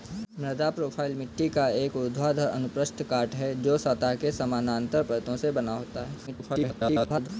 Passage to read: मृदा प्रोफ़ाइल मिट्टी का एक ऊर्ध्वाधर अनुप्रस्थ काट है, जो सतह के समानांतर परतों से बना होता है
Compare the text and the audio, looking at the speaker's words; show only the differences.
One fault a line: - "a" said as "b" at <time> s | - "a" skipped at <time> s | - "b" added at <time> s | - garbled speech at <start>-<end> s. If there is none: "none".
- garbled speech at 6.3-7.3 s